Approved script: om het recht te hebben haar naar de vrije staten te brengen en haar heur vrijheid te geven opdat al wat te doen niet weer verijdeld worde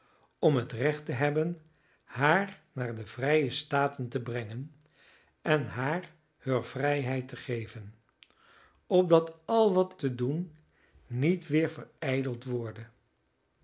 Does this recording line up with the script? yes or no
yes